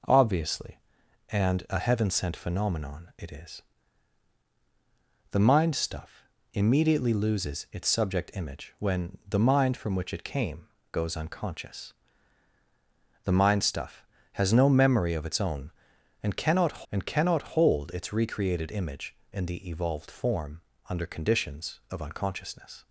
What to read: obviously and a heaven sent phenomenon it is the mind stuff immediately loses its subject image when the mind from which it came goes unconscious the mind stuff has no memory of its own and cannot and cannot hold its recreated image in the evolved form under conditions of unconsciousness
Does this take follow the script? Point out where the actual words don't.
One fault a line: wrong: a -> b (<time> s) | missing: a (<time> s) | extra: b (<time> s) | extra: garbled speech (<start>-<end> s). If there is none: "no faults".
no faults